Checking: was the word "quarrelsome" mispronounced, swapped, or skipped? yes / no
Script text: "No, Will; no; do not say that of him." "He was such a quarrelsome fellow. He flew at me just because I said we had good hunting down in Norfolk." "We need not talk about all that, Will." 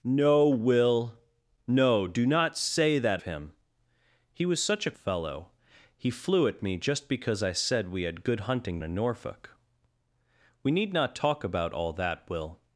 yes